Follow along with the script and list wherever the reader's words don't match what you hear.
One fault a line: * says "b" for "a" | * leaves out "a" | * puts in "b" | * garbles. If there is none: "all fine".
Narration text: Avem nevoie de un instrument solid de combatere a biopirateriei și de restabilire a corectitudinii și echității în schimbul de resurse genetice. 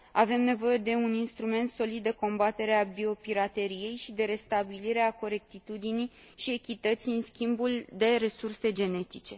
all fine